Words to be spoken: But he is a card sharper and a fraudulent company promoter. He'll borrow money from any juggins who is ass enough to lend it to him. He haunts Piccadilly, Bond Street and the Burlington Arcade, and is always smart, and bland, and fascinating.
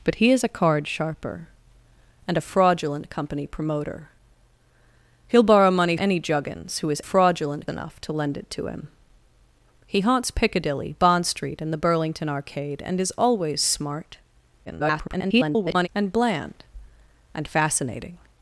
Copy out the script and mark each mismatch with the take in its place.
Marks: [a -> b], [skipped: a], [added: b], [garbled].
But he is a card sharper and a fraudulent company promoter. He'll borrow money [skipped: from] any juggins who is [ass -> fraudulent] enough to lend it to him. He haunts Piccadilly, Bond Street and the Burlington Arcade, and is always smart, [garbled] and bland, and fascinating.